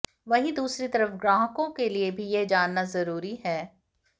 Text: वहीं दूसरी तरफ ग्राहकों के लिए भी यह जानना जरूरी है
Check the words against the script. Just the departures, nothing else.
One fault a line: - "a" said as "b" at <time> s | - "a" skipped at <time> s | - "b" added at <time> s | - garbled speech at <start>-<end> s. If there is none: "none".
none